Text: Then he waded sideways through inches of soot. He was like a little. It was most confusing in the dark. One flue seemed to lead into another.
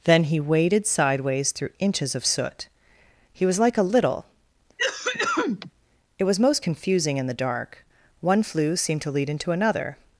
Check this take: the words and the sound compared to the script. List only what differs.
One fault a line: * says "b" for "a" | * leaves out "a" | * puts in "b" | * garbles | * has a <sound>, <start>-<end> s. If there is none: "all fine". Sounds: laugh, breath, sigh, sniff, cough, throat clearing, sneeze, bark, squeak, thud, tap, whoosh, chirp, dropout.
* has a cough, 4.8-5.7 s